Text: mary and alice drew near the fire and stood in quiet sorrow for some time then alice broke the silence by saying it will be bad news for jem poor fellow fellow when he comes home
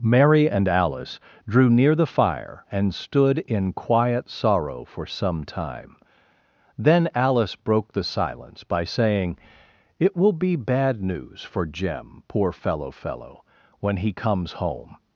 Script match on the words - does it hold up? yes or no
yes